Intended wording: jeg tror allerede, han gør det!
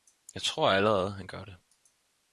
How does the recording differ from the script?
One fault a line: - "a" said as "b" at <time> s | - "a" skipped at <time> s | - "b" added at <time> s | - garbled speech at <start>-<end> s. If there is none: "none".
none